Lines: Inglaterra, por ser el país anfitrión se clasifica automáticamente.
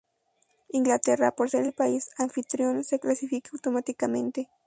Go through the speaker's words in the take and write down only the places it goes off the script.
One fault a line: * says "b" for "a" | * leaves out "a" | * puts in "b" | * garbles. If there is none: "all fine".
all fine